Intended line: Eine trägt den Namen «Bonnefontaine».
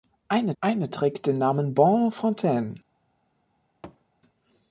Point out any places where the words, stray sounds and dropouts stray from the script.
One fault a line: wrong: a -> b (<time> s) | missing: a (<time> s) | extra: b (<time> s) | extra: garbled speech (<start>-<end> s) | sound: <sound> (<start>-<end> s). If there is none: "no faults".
extra: eine (0.6 s)
sound: thud (3.8-4.0 s)